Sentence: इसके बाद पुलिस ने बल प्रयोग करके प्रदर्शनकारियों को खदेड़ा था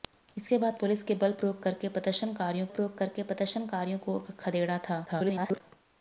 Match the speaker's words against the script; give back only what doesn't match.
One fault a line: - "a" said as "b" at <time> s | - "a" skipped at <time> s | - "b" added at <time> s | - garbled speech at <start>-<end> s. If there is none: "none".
- "प्रयोग करके प्रदर्शनकारियों" added at 2.7 s
- garbled speech at 5.1-5.6 s